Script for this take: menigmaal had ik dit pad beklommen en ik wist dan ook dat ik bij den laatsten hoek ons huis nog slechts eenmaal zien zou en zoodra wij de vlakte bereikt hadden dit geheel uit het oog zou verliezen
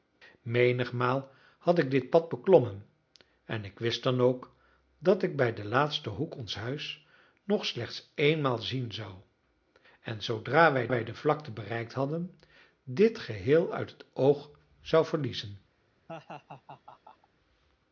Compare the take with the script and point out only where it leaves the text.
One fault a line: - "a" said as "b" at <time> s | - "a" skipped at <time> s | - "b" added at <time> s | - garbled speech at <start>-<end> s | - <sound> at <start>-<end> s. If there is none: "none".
- "wij" added at 10.9 s
- laugh at 16.1-17.3 s